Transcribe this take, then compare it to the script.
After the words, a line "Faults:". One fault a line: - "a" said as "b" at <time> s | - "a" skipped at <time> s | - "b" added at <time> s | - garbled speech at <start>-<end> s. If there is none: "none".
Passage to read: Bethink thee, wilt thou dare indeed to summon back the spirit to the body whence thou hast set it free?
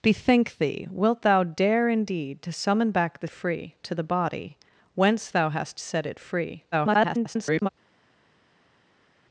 Bethink thee, wilt thou dare indeed to summon back the free to the body whence thou hast set it free? [garbled]
Faults:
- "spirit" said as "free" at 3.3 s
- garbled speech at 6.7-7.7 s